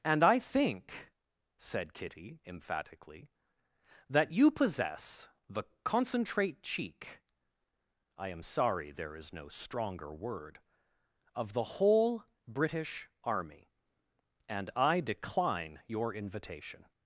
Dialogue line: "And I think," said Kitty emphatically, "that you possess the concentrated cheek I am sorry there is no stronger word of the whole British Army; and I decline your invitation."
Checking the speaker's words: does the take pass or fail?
fail